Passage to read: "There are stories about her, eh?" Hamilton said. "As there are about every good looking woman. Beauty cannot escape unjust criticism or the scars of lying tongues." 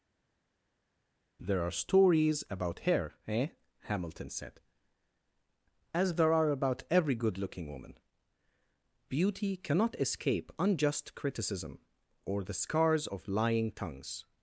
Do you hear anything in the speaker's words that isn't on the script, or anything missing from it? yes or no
no